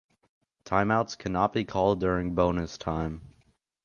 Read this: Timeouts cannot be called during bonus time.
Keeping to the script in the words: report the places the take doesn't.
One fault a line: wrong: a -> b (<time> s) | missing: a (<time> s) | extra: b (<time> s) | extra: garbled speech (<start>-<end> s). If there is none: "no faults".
no faults